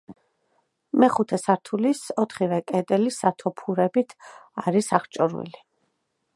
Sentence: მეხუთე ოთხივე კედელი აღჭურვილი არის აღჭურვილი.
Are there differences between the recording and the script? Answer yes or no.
yes